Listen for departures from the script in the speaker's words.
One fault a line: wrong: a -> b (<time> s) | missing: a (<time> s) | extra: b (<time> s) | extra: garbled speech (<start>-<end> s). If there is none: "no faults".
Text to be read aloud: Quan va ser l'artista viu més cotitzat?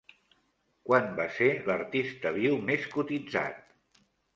no faults